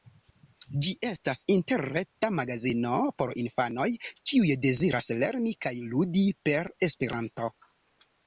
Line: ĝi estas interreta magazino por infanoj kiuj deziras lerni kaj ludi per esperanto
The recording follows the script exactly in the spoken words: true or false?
true